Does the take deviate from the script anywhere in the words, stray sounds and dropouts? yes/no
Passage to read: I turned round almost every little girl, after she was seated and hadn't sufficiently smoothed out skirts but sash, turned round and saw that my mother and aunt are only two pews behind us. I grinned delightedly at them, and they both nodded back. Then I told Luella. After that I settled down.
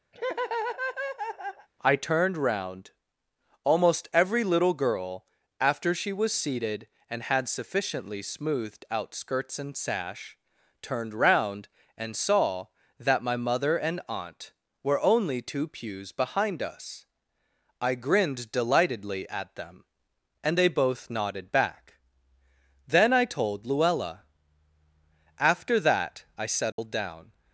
yes